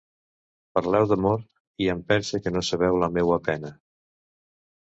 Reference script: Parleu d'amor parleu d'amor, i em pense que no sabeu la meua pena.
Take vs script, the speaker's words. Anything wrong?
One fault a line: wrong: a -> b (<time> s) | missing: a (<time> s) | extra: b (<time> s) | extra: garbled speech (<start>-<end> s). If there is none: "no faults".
missing: parleu d'amor (1.4 s)